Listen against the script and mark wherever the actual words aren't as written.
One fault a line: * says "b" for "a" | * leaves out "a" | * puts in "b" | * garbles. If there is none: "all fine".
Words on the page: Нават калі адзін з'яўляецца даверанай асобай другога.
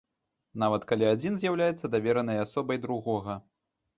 all fine